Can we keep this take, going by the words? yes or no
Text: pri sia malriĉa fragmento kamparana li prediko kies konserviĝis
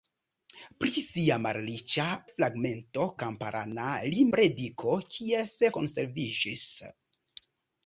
yes